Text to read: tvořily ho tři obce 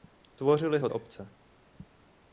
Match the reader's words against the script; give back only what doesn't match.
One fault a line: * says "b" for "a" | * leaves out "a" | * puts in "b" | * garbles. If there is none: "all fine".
* leaves out "tři"